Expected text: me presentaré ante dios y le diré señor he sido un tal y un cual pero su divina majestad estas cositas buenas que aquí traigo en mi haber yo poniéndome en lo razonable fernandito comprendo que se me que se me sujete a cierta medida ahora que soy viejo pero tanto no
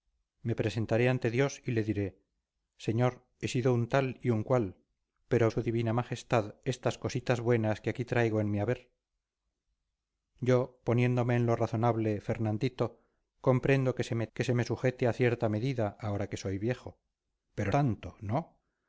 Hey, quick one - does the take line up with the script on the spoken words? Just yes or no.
yes